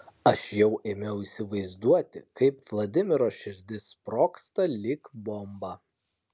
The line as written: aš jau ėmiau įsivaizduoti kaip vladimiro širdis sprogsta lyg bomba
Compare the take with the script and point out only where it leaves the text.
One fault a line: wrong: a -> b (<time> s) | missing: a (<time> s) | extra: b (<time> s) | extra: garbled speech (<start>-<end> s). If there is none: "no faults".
no faults